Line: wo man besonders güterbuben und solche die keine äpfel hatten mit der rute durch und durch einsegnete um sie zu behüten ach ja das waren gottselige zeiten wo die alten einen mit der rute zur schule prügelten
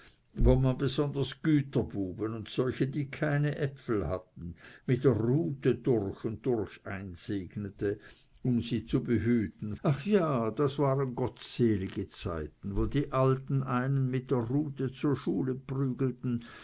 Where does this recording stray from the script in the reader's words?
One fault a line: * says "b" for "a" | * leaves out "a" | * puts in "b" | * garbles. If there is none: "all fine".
all fine